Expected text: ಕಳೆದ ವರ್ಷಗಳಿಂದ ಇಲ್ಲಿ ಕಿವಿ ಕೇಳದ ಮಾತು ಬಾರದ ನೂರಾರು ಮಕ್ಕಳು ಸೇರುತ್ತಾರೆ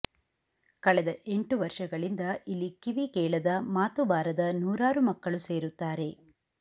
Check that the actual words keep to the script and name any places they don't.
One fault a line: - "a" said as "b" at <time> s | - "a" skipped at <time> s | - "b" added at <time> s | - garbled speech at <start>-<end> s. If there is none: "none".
- "ಎಂಟು" added at 1.3 s